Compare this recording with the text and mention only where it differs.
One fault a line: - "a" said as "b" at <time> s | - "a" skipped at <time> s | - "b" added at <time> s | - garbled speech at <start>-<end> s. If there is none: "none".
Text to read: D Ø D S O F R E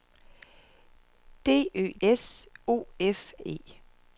- "D" skipped at 1.9 s
- "R" skipped at 3.3 s